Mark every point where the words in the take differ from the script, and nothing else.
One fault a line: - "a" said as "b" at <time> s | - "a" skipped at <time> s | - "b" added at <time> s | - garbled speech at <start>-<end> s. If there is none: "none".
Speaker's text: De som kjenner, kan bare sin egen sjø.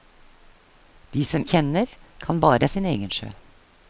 none